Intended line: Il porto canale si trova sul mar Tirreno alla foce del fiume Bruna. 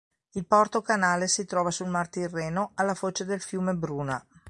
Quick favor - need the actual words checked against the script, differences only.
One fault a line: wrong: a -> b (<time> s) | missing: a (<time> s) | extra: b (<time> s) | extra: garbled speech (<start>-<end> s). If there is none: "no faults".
no faults